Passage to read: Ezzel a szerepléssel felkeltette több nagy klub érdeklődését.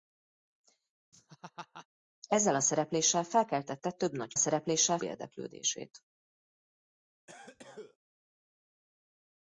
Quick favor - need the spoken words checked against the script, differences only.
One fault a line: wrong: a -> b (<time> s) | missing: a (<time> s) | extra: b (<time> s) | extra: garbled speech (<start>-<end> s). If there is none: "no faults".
wrong: klub -> szerepléssel (4.3 s)